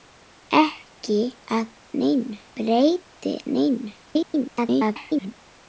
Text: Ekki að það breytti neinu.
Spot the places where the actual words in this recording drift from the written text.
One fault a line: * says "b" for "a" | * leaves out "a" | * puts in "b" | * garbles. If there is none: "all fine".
* says "neinu" for "það"
* garbles